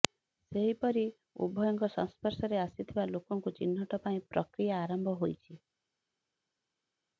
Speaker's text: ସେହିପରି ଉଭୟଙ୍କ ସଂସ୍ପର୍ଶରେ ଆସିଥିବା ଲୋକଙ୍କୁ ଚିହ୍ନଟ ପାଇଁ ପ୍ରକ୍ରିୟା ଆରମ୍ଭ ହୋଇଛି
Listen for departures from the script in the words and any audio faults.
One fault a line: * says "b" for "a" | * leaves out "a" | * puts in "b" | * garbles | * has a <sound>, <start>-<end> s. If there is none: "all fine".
all fine